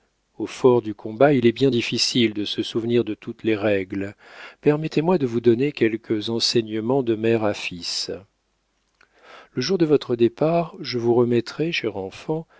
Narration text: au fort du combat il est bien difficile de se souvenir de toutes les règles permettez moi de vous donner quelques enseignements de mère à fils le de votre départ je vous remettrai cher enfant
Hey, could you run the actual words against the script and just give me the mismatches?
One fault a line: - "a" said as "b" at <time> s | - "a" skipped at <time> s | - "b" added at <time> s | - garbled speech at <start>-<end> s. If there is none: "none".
- "jour" added at 9.6 s